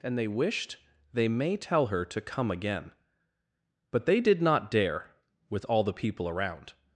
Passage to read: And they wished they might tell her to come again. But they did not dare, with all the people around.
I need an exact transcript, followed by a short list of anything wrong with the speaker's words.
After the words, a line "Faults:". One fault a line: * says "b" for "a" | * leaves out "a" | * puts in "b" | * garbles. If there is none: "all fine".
And they wished they may tell her to come again. But they did not dare, with all the people around.
Faults:
* says "may" for "might"